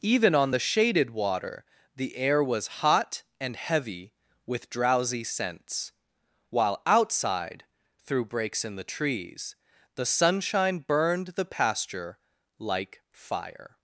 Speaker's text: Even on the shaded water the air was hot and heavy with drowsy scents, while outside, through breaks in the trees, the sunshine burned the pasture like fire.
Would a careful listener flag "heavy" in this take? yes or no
no